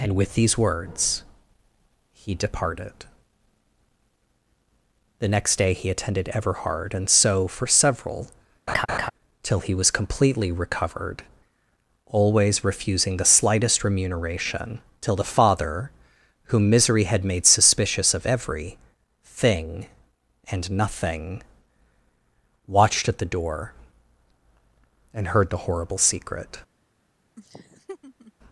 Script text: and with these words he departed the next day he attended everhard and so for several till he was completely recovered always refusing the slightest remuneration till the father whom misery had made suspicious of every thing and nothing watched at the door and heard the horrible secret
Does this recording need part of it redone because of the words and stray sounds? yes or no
yes